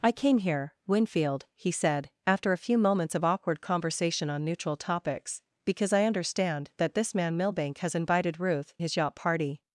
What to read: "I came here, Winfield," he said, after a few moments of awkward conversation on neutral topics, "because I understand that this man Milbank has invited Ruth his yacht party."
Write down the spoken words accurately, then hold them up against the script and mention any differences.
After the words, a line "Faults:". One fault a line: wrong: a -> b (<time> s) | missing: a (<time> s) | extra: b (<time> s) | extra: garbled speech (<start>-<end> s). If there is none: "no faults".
"I came here, Winfield," he said, after a few moments of awkward conversation on neutral topics, "because I understand that this man Milbank has invited Ruth his yacht party."
Faults:
no faults